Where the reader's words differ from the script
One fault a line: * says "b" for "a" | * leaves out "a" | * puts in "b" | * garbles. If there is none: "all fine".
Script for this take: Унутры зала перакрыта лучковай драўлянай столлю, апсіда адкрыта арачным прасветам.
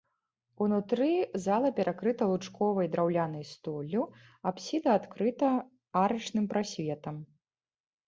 all fine